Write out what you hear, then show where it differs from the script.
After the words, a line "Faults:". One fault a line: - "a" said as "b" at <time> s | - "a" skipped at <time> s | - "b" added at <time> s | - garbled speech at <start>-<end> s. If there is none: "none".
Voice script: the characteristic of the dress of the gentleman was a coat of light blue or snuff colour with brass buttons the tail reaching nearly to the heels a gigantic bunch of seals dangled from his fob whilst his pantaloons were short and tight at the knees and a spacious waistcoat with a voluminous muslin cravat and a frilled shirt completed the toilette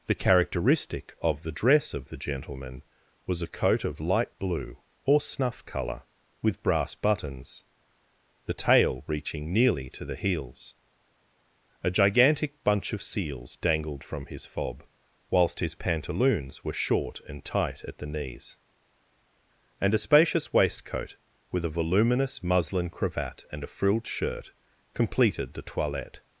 the characteristic of the dress of the gentleman was a coat of light blue or snuff colour with brass buttons the tail reaching nearly to the heels a gigantic bunch of seals dangled from his fob whilst his pantaloons were short and tight at the knees and a spacious waistcoat with a voluminous muslin cravat and a frilled shirt completed the toilette
Faults:
none